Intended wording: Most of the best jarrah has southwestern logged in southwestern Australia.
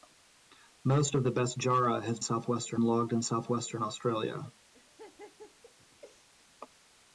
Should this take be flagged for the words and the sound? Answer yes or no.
yes